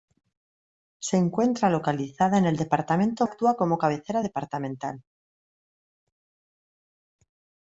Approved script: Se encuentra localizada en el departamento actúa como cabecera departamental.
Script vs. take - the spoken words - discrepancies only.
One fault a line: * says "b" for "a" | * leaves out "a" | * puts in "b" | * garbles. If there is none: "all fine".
all fine